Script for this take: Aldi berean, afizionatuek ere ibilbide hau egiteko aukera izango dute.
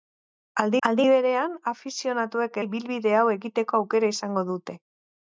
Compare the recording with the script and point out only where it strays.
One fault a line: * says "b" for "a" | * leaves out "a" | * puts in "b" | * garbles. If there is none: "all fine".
* puts in "aldi"
* leaves out "ere"